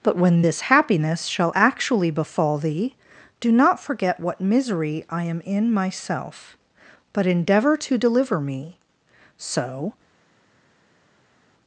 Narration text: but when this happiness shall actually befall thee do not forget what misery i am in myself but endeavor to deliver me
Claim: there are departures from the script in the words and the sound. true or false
true